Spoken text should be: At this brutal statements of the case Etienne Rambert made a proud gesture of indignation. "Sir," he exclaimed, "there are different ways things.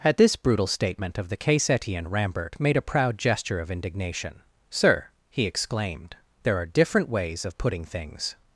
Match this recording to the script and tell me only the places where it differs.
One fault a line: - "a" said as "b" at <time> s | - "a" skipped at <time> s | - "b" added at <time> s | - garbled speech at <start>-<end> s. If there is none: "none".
- "statements" said as "statement" at 0.7 s
- "of putting" added at 7.5 s